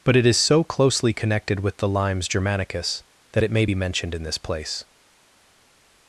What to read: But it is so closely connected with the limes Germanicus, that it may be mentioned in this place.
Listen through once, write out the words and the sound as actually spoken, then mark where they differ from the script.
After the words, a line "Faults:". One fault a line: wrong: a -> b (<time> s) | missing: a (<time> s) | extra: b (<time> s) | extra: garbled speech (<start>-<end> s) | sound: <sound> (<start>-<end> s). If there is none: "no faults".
But it is so closely connected with the limes Germanicus, that it may be mentioned in this place.
Faults:
no faults